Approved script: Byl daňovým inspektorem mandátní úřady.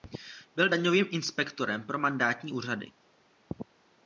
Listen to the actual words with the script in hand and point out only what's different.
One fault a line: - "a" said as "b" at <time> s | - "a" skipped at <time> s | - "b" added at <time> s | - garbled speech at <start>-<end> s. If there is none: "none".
- "pro" added at 1.9 s